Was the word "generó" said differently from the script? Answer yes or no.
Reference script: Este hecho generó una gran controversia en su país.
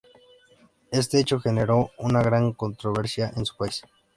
no